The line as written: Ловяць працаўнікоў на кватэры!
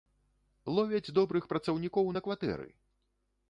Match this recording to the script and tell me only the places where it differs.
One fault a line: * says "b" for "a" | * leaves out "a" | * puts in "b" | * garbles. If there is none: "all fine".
* puts in "добрых"